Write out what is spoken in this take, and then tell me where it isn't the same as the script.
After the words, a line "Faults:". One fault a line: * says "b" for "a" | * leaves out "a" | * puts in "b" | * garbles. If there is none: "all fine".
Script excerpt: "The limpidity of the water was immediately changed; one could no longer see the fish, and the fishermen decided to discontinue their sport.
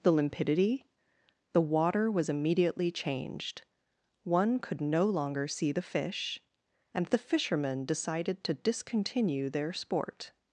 "The limpidity the water was immediately changed; one could no longer see the fish, and the fishermen decided to discontinue their sport.
Faults:
* leaves out "of"